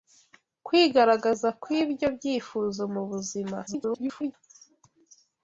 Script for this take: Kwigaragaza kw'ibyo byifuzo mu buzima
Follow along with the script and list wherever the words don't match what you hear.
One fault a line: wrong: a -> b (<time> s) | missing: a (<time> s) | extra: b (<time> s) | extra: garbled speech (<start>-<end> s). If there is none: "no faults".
extra: garbled speech (3.7-4.3 s)